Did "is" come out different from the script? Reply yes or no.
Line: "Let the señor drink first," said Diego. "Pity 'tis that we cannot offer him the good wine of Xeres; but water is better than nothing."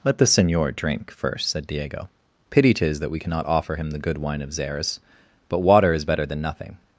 no